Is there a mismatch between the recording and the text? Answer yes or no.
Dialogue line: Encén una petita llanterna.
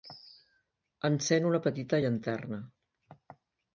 no